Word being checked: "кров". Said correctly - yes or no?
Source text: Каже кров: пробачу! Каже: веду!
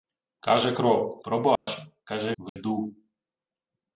yes